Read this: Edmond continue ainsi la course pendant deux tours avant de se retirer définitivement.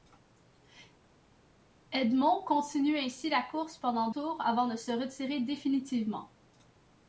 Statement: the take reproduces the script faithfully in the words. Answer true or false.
false